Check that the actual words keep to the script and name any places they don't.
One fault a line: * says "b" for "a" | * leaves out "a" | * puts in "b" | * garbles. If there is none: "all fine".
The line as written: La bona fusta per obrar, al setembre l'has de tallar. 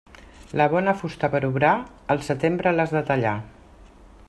all fine